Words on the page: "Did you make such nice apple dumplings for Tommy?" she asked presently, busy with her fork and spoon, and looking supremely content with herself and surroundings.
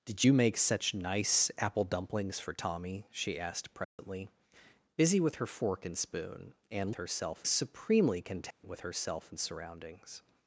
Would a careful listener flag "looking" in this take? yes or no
yes